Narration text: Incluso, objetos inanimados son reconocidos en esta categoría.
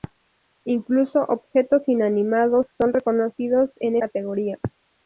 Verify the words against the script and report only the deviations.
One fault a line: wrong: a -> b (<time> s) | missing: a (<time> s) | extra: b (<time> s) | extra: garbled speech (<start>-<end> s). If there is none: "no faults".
missing: esta (4.0 s)